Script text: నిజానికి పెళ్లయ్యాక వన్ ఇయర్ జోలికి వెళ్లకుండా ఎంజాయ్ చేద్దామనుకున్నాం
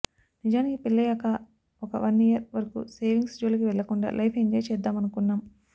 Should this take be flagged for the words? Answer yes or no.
yes